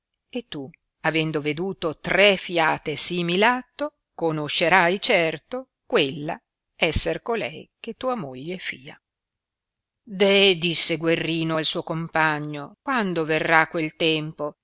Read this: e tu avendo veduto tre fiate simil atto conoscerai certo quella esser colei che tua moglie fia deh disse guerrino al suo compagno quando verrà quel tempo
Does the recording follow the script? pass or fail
pass